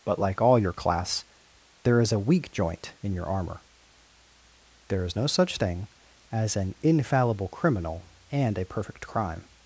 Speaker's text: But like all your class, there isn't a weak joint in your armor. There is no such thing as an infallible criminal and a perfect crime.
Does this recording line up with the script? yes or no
no